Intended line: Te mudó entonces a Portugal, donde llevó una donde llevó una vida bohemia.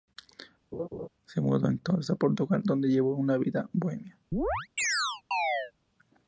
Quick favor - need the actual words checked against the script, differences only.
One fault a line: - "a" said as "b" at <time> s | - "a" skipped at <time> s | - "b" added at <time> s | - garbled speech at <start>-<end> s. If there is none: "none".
- "Te" said as "Se" at 1.2 s
- "donde llevó una" skipped at 3.4 s